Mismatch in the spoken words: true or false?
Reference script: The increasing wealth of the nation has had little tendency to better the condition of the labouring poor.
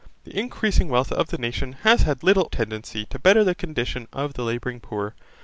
false